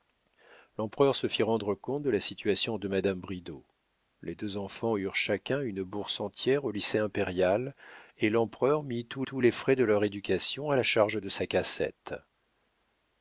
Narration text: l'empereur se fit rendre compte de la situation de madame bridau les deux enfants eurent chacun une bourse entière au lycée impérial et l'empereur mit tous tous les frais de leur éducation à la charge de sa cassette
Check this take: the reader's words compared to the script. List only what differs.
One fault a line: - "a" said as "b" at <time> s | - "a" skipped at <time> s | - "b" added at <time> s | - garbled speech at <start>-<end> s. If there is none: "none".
none